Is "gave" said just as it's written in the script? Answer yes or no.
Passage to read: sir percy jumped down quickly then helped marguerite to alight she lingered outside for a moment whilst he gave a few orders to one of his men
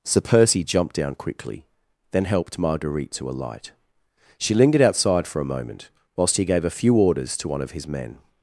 yes